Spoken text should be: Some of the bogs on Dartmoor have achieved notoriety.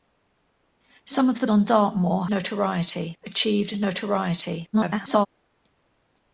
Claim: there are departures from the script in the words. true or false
true